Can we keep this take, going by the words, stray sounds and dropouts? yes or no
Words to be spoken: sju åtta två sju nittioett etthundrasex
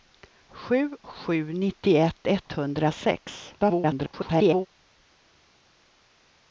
no